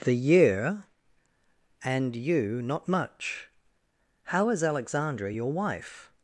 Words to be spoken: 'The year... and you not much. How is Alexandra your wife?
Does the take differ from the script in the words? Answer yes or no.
no